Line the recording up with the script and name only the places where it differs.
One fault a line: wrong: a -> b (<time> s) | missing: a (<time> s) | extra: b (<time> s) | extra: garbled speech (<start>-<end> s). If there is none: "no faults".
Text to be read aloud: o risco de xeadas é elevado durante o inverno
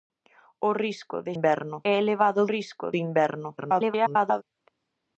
wrong: xeadas -> inverno (1.4 s)
wrong: durante -> risco (2.5 s)
extra: garbled speech (3.6-4.4 s)